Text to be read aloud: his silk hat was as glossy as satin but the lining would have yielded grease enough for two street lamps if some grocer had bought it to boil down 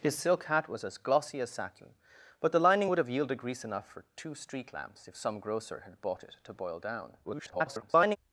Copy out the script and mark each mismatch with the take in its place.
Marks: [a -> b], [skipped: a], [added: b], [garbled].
his silk hat was as glossy as satin but the lining would have yielded grease enough for two street lamps if some grocer had bought it to boil down [garbled]